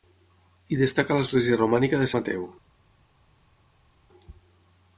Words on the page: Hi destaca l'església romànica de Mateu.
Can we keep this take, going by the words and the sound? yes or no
yes